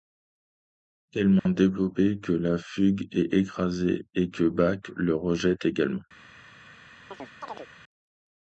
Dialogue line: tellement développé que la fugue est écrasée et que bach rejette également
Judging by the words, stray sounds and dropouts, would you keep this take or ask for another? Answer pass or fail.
fail